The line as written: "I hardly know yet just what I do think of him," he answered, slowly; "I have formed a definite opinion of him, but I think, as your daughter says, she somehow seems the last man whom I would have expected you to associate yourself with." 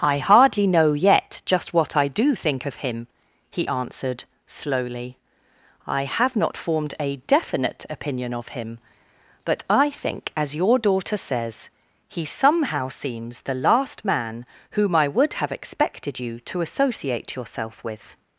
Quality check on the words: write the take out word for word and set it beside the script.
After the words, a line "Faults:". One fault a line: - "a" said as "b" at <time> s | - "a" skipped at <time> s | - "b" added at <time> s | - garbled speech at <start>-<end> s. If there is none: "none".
"I hardly know yet just what I do think of him," he answered, slowly; "I have not formed a definite opinion of him, but I think, as your daughter says, he somehow seems the last man whom I would have expected you to associate yourself with."
Faults:
- "not" added at 6.4 s
- "she" said as "he" at 12.1 s